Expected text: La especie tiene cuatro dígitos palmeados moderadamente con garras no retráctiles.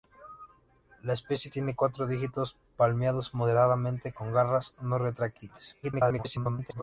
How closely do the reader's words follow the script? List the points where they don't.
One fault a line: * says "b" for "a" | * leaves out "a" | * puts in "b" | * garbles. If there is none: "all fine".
* garbles